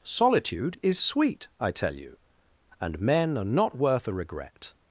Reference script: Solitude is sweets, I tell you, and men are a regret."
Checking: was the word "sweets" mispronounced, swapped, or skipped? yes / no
yes